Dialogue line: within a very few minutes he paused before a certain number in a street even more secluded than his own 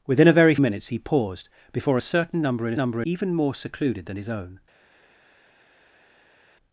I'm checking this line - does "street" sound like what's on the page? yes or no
no